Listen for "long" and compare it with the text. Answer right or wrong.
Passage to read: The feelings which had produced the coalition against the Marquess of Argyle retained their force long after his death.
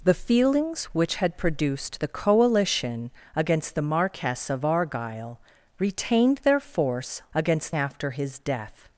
wrong